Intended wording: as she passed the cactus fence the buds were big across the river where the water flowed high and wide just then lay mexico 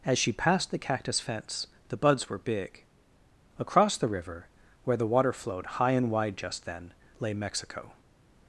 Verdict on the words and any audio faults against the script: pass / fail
pass